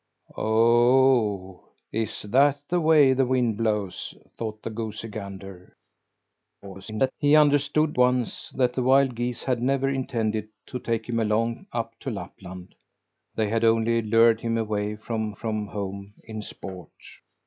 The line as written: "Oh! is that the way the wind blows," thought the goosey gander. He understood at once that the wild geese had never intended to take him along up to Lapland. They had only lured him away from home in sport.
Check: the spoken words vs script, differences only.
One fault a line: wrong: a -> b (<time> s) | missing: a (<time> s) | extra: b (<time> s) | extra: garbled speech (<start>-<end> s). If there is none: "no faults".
extra: garbled speech (6.6-7.1 s)
missing: at (8.0 s)
extra: from (15.3 s)